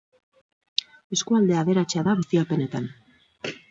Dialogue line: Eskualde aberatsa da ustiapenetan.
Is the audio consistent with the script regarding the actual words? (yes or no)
yes